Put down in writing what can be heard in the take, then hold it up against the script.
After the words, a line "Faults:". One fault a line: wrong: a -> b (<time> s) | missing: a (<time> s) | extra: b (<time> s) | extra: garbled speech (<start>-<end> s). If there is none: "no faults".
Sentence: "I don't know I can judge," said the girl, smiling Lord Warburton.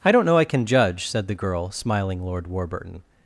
"I don't know I can judge," said the girl, smiling Lord Warburton.
Faults:
no faults